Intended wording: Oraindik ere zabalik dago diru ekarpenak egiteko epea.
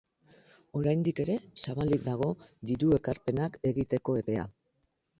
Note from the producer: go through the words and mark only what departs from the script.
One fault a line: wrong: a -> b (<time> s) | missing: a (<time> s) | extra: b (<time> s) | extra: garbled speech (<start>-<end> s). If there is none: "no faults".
no faults